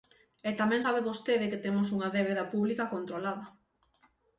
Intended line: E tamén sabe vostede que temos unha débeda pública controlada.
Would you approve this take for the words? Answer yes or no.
yes